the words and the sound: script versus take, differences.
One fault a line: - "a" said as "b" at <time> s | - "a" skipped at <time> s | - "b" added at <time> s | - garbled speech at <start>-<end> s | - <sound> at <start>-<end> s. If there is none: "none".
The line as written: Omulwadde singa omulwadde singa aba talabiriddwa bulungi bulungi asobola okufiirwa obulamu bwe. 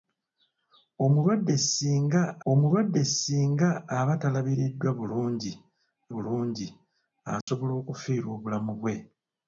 - dropout at 7.4-7.5 s